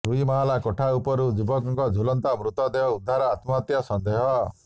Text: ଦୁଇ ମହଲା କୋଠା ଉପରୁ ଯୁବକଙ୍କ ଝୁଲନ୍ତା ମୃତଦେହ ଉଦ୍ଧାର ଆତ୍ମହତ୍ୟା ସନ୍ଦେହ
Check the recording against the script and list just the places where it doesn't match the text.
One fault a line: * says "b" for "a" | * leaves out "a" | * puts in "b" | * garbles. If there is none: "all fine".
all fine